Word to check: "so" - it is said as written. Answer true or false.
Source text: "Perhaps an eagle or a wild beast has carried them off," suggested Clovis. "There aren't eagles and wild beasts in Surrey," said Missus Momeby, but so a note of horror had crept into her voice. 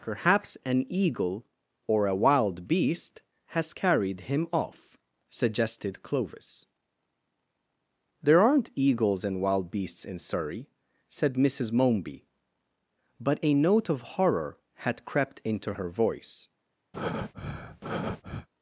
false